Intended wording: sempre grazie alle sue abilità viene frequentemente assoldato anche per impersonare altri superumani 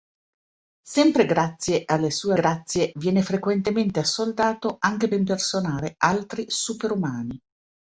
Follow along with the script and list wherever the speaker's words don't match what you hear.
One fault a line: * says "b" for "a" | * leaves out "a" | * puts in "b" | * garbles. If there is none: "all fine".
* says "grazie" for "abilità"
* leaves out "per"